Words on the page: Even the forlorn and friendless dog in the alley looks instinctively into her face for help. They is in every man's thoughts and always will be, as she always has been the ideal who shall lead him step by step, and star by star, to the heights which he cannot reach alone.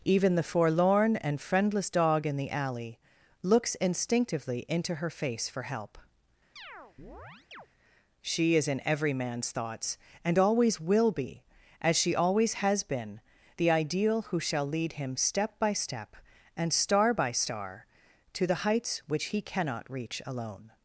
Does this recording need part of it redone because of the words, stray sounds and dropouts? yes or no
yes